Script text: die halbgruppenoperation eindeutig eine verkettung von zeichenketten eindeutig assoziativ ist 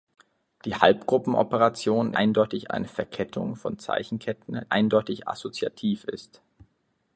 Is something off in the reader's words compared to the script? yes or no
no